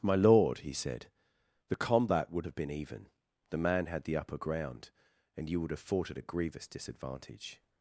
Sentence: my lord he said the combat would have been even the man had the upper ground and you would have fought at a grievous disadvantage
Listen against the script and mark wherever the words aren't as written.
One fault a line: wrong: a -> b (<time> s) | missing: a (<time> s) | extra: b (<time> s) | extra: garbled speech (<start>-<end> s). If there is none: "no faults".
no faults